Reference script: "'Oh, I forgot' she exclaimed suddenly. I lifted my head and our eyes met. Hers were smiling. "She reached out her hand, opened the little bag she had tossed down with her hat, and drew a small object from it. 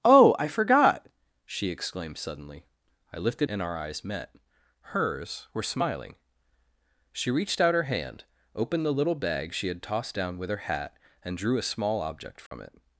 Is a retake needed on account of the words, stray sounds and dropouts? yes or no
yes